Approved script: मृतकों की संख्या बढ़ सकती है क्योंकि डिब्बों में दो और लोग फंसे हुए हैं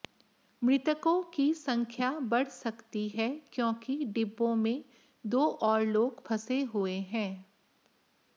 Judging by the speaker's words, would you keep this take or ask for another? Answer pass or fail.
pass